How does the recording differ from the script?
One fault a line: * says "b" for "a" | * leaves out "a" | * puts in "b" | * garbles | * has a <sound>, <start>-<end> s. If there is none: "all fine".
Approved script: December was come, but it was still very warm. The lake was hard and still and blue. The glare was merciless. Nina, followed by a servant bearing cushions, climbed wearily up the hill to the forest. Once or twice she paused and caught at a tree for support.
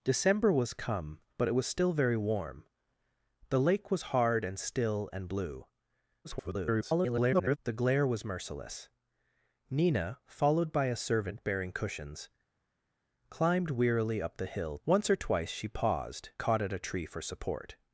* garbles
* leaves out "to the forest"
* leaves out "and"